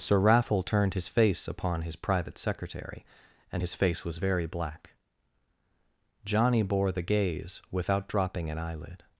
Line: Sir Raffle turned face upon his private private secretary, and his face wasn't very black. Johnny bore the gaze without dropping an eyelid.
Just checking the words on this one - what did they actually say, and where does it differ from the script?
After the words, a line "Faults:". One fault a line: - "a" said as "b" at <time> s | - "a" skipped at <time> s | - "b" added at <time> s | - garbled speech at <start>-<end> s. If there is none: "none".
Sir Raffle turned his face upon his private secretary, and his face was very black. Johnny bore the gaze without dropping an eyelid.
Faults:
- "his" added at 0.9 s
- "private" skipped at 2.4 s
- "wasn't" said as "was" at 4.0 s